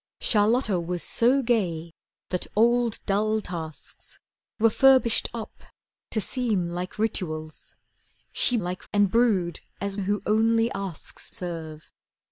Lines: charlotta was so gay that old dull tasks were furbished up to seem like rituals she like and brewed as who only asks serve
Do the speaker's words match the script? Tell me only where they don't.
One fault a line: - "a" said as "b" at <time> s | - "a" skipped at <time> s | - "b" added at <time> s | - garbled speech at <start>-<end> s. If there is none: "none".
none